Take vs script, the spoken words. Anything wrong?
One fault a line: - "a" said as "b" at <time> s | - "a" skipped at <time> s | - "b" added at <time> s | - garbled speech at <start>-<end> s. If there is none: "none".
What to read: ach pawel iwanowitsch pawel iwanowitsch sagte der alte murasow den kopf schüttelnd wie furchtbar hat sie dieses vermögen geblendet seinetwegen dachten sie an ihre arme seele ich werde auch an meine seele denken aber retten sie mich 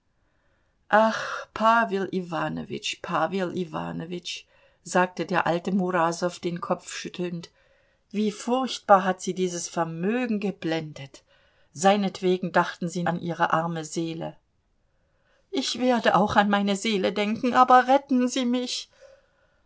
none